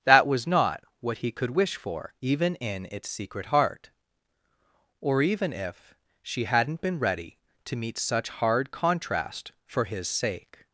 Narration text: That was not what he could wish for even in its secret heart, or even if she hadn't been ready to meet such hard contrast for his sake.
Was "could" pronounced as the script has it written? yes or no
yes